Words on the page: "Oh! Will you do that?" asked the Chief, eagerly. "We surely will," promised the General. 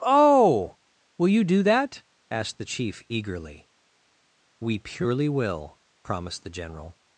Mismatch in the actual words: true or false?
true